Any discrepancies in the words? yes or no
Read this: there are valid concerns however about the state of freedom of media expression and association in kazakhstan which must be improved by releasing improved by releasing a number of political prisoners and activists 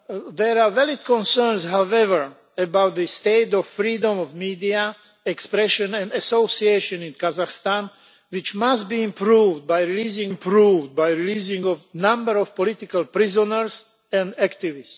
no